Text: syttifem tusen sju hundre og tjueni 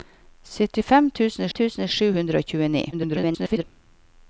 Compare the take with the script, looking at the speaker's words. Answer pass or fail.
fail